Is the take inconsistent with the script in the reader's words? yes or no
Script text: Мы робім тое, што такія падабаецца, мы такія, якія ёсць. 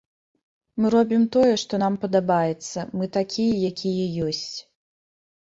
yes